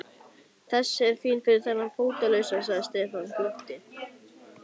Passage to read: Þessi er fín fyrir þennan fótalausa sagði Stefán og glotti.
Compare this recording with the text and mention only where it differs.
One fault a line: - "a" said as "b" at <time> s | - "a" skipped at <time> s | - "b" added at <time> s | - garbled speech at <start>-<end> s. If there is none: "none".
none